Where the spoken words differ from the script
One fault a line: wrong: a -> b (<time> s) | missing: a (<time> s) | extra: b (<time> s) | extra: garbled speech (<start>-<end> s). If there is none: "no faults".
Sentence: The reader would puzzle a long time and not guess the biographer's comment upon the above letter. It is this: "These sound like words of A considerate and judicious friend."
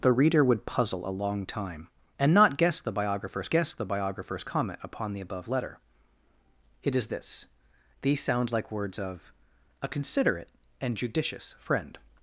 extra: guess the biographer's (3.5 s)